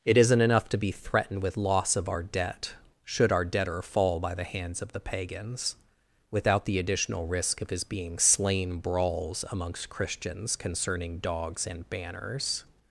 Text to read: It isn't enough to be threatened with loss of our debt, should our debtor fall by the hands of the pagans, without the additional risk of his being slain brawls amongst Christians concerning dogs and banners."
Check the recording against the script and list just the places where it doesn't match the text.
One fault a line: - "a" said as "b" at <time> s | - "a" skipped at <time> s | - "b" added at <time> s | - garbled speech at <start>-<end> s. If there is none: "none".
none